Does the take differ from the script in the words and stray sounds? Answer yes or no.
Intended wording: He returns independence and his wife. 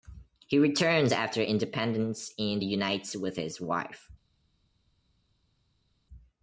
yes